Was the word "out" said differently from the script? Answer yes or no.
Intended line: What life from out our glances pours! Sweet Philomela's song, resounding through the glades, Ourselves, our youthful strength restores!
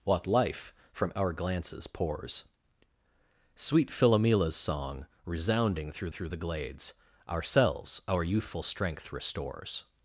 yes